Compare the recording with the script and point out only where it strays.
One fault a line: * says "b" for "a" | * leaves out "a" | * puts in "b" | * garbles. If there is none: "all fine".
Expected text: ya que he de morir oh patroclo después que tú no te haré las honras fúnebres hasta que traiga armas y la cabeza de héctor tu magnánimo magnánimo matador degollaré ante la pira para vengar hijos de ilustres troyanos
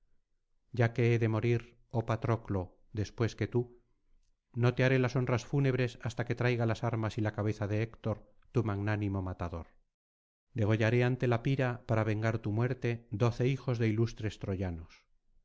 * puts in "las"
* leaves out "magnánimo"
* puts in "tu muerte doce"